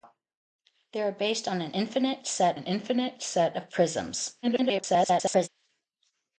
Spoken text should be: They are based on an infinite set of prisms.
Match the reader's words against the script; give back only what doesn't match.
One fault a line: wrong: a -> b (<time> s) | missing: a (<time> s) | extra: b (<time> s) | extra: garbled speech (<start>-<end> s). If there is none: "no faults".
extra: an infinite set (2.5 s)
extra: garbled speech (4.4-5.5 s)